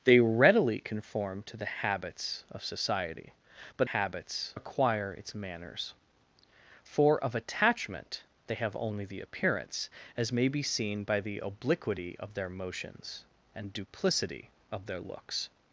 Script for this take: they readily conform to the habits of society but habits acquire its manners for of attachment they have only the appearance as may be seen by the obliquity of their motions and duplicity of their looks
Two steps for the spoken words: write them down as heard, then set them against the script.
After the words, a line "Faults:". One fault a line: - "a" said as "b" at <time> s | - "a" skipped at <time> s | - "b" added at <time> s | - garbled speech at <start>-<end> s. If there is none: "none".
they readily conform to the habits of society but habits acquire its manners for of attachment they have only the appearance as may be seen by the obliquity of their motions and duplicity of their looks
Faults:
none